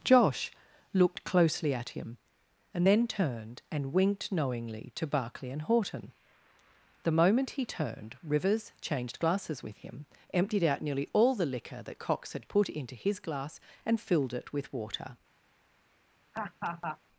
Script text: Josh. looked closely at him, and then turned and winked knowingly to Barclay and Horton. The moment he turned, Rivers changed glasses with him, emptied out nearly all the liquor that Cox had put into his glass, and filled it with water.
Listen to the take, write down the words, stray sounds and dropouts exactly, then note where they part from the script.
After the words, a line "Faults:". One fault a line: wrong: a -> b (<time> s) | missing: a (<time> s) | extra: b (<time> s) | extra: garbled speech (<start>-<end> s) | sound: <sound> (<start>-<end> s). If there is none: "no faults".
Josh. looked closely at him, and then turned and winked knowingly to Barclay and Horton. The moment he turned, Rivers changed glasses with him, emptied out nearly all the liquor that Cox had put into his glass, and filled it with water.
Faults:
sound: laugh (16.3-17.0 s)